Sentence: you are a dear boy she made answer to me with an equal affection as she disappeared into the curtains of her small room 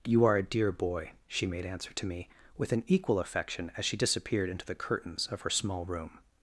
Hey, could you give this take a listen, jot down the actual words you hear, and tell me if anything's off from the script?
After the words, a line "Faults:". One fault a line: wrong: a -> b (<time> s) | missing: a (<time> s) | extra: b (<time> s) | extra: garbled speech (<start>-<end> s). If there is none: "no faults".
you are a dear boy she made answer to me with an equal affection as she disappeared into the curtains of her small room
Faults:
no faults